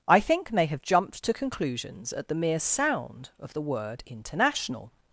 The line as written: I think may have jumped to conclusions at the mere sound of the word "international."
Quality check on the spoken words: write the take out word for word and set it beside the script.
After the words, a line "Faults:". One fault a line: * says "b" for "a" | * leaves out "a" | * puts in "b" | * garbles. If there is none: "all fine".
I think may have jumped to conclusions at the mere sound of the word "international."
Faults:
all fine